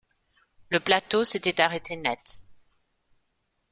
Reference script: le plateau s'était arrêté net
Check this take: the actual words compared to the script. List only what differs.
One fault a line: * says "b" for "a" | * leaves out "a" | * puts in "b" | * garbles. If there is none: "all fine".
all fine